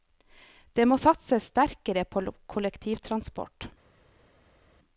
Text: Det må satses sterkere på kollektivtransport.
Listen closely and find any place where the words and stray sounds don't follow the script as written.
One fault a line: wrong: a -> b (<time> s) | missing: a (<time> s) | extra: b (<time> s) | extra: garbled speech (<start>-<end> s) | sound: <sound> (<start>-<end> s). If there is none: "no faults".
no faults